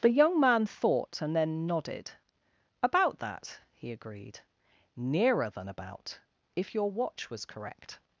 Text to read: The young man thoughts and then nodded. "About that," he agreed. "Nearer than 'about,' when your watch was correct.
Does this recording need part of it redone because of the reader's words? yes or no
yes